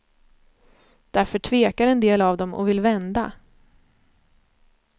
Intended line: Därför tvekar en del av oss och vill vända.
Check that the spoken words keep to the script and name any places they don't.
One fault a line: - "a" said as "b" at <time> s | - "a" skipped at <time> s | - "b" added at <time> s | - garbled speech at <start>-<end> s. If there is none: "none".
- "oss" said as "dem" at 2.4 s